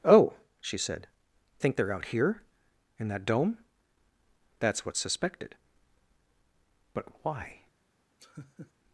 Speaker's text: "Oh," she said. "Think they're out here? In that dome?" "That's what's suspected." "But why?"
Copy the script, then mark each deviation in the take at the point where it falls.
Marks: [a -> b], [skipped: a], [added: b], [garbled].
"Oh," she said. "Think they're out here? In that dome?" "That's what's suspected." "But why?"